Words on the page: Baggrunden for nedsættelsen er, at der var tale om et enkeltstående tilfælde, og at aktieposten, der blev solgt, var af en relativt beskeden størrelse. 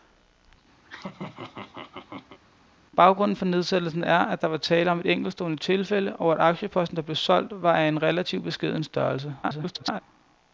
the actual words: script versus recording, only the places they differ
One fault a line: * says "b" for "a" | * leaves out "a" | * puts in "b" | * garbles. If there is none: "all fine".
* garbles